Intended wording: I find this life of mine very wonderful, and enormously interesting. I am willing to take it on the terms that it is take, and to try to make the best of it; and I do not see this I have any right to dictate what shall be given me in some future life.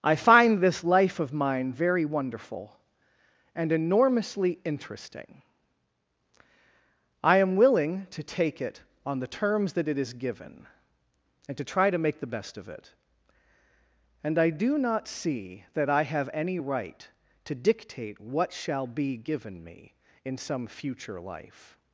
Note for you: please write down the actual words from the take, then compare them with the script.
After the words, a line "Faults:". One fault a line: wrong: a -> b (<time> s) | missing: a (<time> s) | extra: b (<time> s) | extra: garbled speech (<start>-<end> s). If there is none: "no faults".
I find this life of mine very wonderful, and enormously interesting. I am willing to take it on the terms that it is given, and to try to make the best of it; and I do not see that I have any right to dictate what shall be given me in some future life.
Faults:
wrong: take -> given (10.1 s)
wrong: this -> that (15.8 s)